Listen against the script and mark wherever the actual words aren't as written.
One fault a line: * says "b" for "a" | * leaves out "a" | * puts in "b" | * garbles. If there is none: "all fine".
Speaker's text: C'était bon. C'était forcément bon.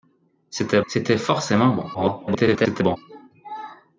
* leaves out "bon"
* garbles